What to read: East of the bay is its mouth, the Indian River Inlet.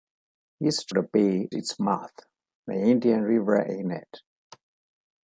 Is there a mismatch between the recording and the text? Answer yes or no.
yes